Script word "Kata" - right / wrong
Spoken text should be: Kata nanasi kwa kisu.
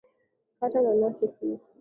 right